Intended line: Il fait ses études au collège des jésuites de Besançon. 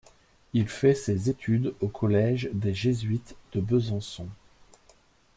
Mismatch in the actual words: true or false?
false